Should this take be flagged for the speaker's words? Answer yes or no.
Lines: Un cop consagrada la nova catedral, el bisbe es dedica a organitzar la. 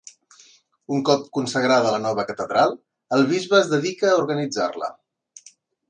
no